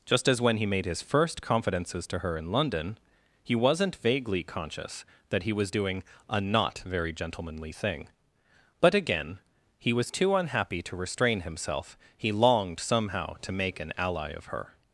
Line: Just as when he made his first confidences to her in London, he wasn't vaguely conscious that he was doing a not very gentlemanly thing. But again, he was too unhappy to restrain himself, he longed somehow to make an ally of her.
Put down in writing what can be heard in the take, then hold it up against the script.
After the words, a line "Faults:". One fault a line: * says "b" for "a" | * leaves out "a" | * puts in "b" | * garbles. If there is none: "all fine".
Just as when he made his first confidences to her in London, he wasn't vaguely conscious that he was doing a not very gentlemanly thing. But again, he was too unhappy to restrain himself, he longed somehow to make an ally of her.
Faults:
all fine